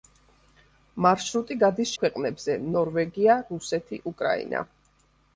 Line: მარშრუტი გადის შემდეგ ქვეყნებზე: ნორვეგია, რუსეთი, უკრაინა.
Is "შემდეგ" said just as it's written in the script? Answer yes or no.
no